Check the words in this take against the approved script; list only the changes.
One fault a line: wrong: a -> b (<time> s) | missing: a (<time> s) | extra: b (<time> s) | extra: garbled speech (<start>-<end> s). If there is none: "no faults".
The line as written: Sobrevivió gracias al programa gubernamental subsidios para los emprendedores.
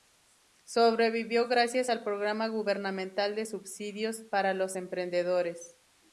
extra: de (3.3 s)